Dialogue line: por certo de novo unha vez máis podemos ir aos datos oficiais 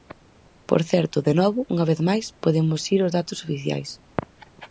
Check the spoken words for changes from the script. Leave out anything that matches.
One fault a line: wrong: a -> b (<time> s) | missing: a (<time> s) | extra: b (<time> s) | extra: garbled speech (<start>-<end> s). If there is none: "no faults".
no faults